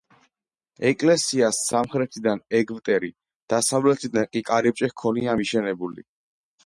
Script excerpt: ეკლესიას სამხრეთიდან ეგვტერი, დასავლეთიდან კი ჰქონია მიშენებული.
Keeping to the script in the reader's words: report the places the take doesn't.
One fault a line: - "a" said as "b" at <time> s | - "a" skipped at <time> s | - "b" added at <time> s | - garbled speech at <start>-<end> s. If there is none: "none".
- "კარიბჭე" added at 4.5 s